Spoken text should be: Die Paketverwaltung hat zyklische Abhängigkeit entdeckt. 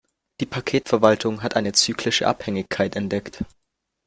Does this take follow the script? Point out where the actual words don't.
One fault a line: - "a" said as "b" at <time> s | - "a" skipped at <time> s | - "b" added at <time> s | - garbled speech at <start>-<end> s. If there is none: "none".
- "eine" added at 1.6 s